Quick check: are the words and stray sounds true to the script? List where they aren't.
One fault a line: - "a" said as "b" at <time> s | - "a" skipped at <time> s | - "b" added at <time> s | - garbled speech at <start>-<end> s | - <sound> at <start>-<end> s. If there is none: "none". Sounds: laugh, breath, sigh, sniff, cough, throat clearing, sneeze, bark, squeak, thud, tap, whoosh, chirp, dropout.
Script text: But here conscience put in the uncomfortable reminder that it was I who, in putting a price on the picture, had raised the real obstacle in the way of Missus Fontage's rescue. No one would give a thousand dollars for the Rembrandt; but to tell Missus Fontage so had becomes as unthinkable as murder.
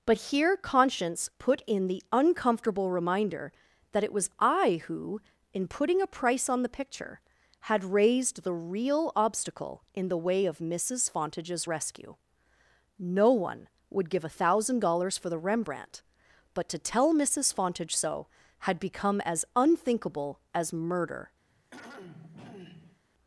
- "becomes" said as "become" at 18.8 s
- throat clearing at 21.5-23.0 s